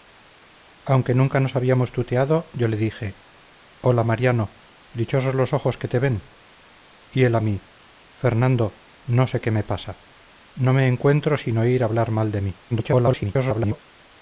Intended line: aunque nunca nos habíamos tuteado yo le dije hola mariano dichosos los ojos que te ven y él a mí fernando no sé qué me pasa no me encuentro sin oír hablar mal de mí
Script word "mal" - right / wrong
right